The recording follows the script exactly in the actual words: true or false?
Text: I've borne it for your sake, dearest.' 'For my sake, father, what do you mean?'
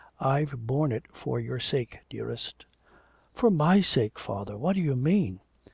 true